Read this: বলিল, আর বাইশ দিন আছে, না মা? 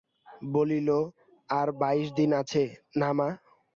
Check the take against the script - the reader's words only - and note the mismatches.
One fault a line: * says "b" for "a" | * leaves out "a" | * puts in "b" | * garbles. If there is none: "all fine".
all fine